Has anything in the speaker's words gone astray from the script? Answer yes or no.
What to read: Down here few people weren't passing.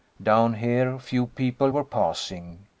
yes